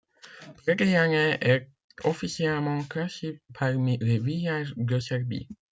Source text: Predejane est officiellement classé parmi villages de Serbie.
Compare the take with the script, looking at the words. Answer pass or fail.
fail